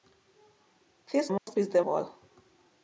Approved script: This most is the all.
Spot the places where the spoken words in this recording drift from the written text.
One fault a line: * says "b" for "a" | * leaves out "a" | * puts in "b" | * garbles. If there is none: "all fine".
all fine